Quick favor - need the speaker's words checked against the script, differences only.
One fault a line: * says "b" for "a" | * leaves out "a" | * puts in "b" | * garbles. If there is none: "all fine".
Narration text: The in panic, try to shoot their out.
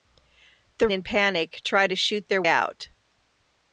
all fine